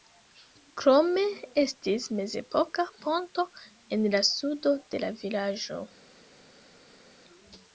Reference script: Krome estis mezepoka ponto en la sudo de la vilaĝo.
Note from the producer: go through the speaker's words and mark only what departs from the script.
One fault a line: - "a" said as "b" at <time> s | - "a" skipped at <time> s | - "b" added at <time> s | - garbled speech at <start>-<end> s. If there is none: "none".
none